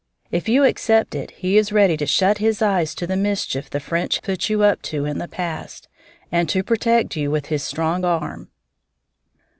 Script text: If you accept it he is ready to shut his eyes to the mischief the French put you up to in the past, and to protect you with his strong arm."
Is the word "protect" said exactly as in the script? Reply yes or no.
yes